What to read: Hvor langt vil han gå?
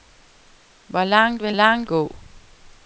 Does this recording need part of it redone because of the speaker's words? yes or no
yes